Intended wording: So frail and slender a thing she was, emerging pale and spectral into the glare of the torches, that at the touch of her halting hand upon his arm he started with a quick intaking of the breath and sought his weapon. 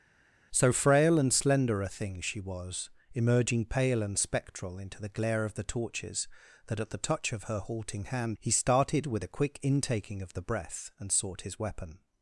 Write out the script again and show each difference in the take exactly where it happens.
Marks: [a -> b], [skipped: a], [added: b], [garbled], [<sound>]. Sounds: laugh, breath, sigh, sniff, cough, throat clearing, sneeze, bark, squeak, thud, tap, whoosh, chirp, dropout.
So frail and slender a thing she was, emerging pale and spectral into the glare of the torches, that at the touch of her halting hand [skipped: upon his arm] he started with a quick intaking of the breath and sought his weapon.